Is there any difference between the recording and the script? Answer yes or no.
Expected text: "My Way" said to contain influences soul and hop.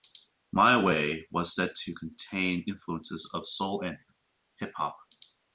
yes